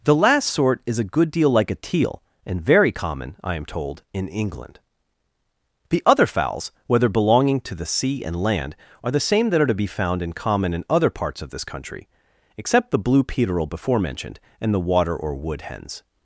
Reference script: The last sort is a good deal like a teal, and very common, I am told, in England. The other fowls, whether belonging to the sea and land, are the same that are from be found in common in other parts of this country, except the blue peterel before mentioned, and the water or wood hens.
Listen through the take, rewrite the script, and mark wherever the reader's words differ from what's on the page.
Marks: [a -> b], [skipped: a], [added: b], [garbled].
The last sort is a good deal like a teal, and very common, I am told, in England. The other fowls, whether belonging to the sea and land, are the same that are [from -> to] be found in common in other parts of this country, except the blue peterel before mentioned, and the water or wood hens.